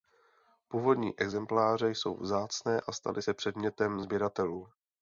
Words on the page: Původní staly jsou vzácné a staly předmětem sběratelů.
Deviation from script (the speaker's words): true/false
true